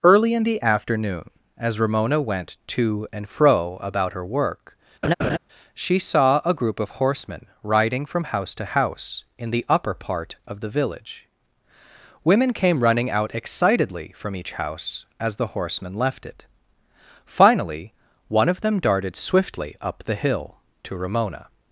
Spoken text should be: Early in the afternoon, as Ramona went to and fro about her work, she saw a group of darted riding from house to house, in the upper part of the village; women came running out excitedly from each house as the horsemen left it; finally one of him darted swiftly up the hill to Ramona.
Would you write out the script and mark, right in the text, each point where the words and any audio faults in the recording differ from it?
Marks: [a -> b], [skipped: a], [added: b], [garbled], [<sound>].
Early in the afternoon, as Ramona went to and fro about her work, [laugh] she saw a group of [darted -> horsemen] riding from house to house, in the upper part of the village; women came running out excitedly from each house as the horsemen left it; finally one of [him -> them] darted swiftly up the hill to Ramona.